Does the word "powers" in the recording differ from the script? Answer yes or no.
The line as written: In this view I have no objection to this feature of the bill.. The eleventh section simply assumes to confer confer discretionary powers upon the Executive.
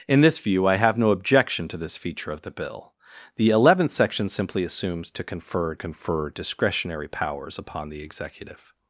no